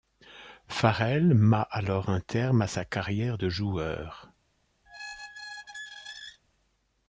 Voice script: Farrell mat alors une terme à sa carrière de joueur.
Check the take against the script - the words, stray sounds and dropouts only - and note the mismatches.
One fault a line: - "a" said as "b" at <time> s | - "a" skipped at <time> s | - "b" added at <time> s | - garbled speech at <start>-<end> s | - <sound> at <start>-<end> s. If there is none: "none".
- "une" said as "un" at 2.1 s
- squeak at 4.9-6.4 s